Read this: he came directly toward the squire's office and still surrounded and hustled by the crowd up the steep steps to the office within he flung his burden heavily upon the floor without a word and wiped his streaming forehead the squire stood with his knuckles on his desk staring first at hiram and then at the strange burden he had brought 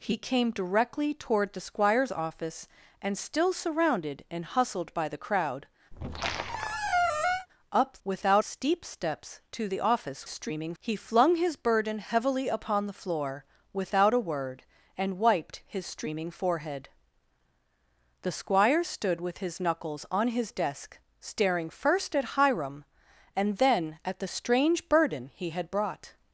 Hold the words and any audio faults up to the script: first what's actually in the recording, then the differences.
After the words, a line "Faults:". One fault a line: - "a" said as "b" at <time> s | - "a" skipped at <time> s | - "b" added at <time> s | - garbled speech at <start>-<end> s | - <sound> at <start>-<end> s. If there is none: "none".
he came directly toward the squire's office and still surrounded and hustled by the crowd up without steep steps to the office streaming he flung his burden heavily upon the floor without a word and wiped his streaming forehead the squire stood with his knuckles on his desk staring first at hiram and then at the strange burden he had brought
Faults:
- squeak at 5.9-7.5 s
- "the" said as "without" at 8.0 s
- "within" said as "streaming" at 10.3 s